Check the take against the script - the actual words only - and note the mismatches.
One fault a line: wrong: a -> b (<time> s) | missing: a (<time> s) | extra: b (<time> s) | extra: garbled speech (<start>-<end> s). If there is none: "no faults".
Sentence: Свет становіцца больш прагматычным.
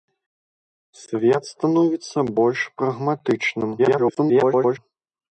extra: garbled speech (3.8-4.8 s)